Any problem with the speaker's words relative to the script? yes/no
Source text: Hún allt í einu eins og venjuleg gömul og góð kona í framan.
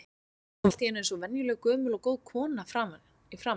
no